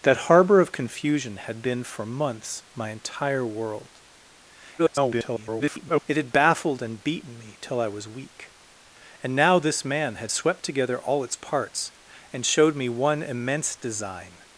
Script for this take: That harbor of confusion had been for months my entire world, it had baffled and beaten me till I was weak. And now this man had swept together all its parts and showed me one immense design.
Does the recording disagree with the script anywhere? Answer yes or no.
yes